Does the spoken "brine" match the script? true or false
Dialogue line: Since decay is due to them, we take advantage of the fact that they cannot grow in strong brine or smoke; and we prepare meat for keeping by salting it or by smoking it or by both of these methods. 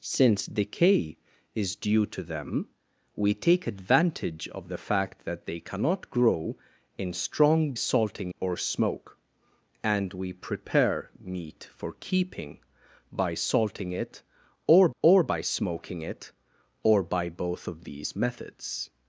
false